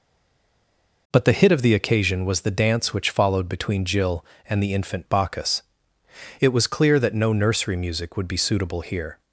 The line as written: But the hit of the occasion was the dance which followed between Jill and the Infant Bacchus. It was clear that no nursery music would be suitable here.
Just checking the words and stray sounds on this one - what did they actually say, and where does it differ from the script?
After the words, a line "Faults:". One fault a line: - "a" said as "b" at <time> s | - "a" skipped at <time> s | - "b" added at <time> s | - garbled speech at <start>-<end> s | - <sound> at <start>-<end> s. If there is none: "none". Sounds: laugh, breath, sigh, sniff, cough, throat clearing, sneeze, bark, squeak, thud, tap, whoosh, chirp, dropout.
But the hit of the occasion was the dance which followed between Jill and the Infant Bacchus. It was clear that no nursery music would be suitable here.
Faults:
none